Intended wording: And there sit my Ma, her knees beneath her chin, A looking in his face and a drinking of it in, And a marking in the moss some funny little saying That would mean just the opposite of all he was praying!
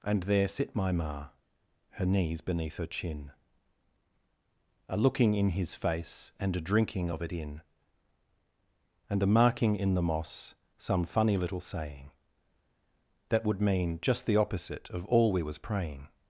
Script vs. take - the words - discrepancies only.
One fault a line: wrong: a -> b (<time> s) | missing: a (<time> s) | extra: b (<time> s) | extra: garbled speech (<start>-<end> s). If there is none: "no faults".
wrong: he -> we (15.3 s)